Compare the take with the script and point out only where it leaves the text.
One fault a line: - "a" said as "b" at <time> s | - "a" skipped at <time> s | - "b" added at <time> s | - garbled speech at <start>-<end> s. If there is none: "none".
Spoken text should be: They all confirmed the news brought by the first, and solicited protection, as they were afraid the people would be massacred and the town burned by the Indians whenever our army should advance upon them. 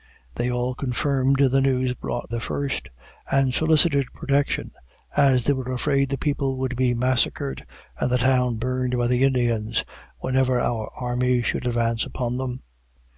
- "by" skipped at 2.3 s